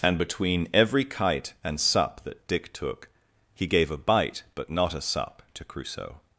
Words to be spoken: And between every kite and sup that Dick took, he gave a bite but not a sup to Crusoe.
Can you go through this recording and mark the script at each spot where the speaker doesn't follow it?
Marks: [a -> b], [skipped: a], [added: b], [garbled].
And between every kite and sup that Dick took, he gave a bite but not a sup to Crusoe.